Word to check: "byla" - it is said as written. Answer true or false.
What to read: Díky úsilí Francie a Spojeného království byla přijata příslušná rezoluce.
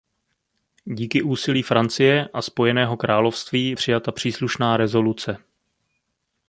false